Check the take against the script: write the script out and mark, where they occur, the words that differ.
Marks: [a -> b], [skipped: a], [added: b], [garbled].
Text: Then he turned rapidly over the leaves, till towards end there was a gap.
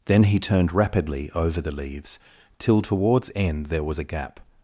Then he turned rapidly over the leaves, till towards end there was a gap.